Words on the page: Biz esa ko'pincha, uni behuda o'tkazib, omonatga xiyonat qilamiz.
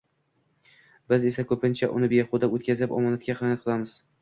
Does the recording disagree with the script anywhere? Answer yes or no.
no